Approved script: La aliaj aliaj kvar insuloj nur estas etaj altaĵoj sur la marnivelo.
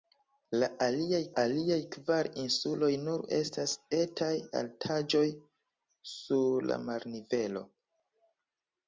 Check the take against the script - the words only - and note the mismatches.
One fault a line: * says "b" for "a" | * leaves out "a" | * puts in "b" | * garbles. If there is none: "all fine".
all fine